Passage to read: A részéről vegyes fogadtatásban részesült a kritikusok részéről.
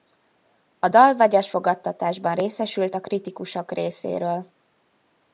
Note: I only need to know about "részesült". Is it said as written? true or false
true